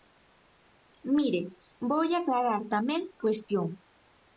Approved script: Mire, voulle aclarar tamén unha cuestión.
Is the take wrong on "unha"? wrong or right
wrong